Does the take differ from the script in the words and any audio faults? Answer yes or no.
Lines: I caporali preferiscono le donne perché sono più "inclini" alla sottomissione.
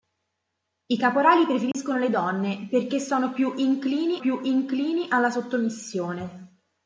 yes